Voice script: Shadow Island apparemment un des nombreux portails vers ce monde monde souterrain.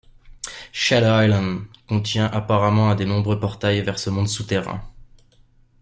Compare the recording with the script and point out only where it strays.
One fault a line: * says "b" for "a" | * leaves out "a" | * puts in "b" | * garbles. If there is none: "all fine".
* puts in "contient"
* leaves out "monde"